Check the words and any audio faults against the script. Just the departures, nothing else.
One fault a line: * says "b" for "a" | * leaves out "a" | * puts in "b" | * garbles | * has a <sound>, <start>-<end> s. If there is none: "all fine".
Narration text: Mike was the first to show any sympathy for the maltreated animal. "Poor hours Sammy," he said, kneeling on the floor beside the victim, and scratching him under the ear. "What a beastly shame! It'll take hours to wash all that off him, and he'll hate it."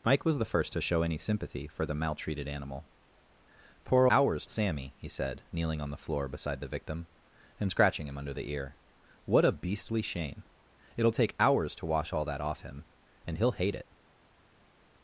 all fine